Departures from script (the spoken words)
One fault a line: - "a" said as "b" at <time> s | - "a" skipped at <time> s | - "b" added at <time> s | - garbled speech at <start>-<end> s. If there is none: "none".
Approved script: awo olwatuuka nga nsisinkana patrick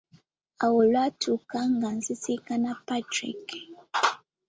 none